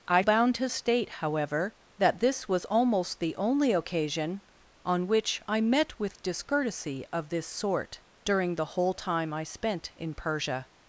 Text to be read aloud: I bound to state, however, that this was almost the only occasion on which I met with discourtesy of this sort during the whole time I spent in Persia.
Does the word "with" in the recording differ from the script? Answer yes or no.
no